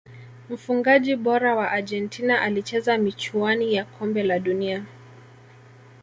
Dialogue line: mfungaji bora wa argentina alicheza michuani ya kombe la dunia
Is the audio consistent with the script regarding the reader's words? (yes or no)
yes